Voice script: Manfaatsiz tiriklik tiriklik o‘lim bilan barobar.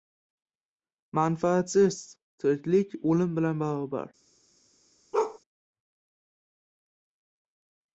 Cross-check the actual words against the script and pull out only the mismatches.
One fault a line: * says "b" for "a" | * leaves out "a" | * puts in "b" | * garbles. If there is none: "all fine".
* leaves out "tiriklik"